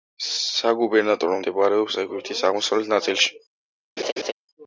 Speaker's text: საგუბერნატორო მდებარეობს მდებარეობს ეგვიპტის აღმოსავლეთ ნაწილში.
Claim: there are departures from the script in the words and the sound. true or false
true